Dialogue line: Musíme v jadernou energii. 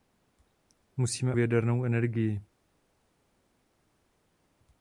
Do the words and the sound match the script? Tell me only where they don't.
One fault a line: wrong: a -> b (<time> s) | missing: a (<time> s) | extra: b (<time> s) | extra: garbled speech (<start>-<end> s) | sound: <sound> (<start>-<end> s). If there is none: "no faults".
no faults